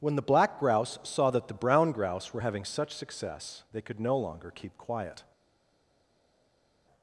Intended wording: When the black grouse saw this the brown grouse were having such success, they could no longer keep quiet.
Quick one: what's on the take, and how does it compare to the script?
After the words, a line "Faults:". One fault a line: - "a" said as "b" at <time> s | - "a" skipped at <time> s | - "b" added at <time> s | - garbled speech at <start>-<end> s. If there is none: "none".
When the black grouse saw that the brown grouse were having such success, they could no longer keep quiet.
Faults:
- "this" said as "that" at 1.3 s